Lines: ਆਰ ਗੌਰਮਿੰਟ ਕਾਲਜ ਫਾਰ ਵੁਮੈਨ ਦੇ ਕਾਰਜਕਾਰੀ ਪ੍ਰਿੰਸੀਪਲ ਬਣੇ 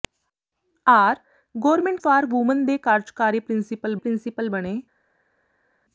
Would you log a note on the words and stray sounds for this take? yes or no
yes